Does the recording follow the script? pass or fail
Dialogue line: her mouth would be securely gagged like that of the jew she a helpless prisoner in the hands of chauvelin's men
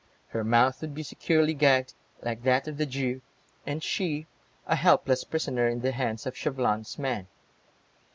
fail